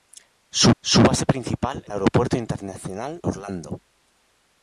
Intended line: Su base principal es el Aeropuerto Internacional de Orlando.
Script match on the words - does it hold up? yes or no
no